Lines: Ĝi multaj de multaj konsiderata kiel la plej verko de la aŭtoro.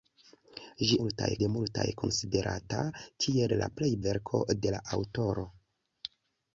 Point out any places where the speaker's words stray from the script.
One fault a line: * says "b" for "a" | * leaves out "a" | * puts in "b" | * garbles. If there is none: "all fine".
all fine